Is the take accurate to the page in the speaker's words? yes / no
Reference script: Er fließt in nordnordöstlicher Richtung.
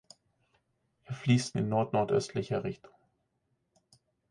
yes